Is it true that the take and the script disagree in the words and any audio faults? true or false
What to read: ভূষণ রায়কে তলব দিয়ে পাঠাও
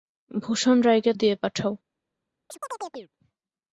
true